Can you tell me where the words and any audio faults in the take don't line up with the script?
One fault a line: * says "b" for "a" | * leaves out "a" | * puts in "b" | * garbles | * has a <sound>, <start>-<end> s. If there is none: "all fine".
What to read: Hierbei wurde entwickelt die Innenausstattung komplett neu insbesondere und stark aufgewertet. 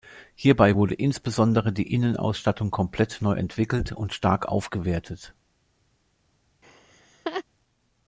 * says "insbesondere" for "entwickelt"
* says "entwickelt" for "insbesondere"
* has a laugh, 6.6-7.4 s